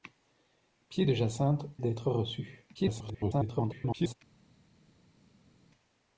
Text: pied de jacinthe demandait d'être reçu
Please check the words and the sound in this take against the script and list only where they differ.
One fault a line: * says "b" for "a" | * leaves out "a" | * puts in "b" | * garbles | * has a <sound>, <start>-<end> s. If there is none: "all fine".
* leaves out "demandait"
* garbles